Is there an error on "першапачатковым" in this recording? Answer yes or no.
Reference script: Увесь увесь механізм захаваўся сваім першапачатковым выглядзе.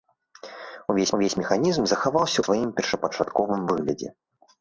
no